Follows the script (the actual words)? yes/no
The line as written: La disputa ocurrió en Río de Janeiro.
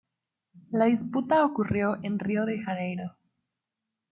yes